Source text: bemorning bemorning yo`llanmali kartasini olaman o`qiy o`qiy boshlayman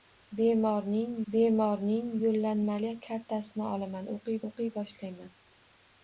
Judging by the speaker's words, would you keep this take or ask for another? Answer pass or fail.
pass